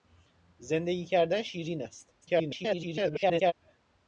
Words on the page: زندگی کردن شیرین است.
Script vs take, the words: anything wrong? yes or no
yes